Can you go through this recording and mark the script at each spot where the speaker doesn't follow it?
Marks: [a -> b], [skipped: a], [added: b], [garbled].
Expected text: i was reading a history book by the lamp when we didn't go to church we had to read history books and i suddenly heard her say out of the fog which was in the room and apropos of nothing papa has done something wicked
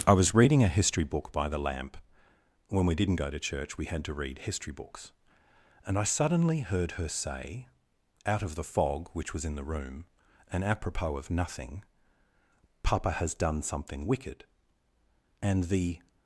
i was reading a history book by the lamp when we didn't go to church we had to read history books and i suddenly heard her say out of the fog which was in the room and apropos of nothing papa has done something wicked [added: and the]